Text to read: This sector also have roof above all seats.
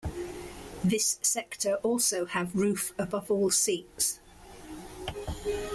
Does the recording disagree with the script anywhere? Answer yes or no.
no